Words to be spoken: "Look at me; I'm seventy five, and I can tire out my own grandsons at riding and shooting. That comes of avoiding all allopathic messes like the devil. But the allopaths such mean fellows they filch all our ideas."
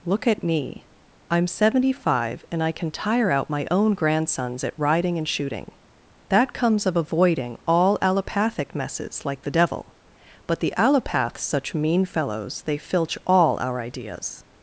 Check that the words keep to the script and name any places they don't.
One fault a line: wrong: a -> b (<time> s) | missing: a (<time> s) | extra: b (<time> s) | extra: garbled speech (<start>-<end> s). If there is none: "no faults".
no faults